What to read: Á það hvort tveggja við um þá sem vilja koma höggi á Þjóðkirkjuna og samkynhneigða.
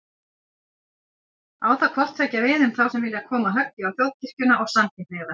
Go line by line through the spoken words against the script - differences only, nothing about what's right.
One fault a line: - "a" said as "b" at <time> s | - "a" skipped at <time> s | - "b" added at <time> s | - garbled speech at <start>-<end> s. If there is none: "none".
none